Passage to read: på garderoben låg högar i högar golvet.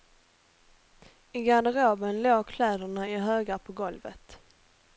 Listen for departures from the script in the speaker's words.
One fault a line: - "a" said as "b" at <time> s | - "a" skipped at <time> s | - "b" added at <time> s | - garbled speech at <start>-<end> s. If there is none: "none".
- "på" said as "I" at 1.3 s
- "högar" said as "kläderna" at 2.5 s
- "på" added at 3.6 s